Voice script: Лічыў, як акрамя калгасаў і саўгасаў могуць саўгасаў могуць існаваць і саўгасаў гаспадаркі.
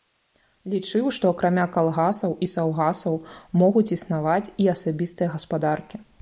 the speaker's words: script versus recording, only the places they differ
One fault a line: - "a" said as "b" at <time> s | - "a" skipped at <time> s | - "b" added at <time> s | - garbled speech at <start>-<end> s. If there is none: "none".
- "як" said as "што" at 1.2 s
- "саўгасаў могуць" skipped at 3.9 s
- "саўгасаў" said as "асабістыя" at 4.8 s